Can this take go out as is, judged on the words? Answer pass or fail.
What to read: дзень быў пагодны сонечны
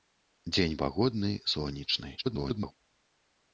fail